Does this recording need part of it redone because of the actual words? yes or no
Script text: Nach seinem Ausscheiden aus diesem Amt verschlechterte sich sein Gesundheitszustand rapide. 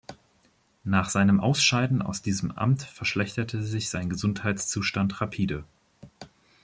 no